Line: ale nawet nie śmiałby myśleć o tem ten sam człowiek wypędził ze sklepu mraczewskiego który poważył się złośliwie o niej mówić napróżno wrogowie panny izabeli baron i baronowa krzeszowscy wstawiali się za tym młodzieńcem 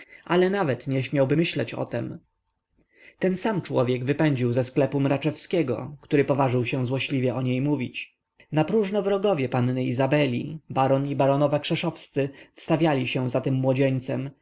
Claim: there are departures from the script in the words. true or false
false